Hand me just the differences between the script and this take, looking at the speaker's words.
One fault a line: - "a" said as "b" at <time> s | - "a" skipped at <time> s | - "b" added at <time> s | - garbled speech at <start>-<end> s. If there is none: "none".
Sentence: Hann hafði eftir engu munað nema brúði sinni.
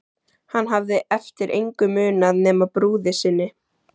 none